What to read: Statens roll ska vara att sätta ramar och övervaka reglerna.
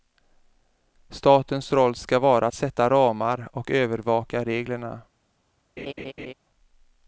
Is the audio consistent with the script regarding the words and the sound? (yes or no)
no